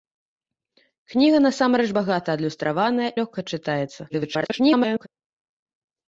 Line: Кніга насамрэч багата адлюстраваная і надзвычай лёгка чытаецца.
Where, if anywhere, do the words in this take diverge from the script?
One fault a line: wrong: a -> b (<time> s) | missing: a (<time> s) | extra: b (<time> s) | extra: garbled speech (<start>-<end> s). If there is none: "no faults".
missing: і надзвычай (3.1 s)
extra: garbled speech (4.1-5.1 s)